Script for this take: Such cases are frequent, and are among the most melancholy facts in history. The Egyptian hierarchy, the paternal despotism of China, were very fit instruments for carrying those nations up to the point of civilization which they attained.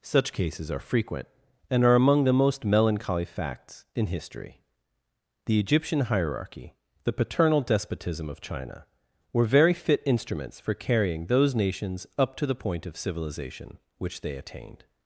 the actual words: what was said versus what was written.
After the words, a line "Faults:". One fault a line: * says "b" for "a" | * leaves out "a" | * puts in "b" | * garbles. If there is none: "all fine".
Such cases are frequent, and are among the most melancholy facts in history. The Egyptian hierarchy, the paternal despotism of China, were very fit instruments for carrying those nations up to the point of civilization which they attained.
Faults:
all fine